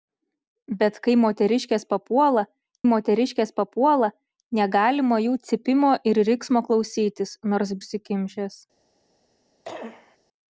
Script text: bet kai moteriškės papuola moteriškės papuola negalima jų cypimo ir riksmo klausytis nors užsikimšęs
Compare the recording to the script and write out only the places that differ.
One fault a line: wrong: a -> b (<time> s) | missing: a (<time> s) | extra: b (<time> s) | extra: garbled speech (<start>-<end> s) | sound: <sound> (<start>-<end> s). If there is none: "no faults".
sound: cough (9.6-10.2 s)